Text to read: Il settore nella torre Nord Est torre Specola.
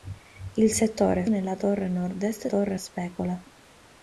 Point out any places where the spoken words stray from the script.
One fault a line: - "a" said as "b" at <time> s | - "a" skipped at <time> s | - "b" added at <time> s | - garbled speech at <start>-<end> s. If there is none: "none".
none